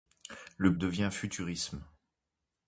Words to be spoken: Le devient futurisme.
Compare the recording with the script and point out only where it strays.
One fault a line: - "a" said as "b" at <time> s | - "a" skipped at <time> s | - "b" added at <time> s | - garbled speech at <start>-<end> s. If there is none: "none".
none